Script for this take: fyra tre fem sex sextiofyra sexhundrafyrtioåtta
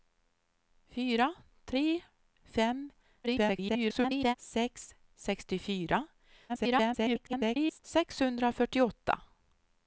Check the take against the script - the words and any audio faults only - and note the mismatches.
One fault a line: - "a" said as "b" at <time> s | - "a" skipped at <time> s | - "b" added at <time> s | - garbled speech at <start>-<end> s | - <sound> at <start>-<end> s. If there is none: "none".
- garbled speech at 3.2-4.3 s
- garbled speech at 6.5-7.8 s